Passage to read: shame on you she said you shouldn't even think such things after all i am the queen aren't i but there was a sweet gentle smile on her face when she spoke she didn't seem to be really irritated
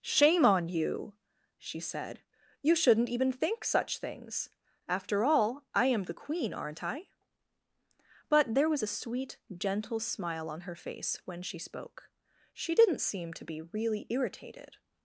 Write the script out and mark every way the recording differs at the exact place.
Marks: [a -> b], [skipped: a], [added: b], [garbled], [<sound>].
shame on you she said you shouldn't even think such things after all i am the queen aren't i but there was a sweet gentle smile on her face when she spoke she didn't seem to be really irritated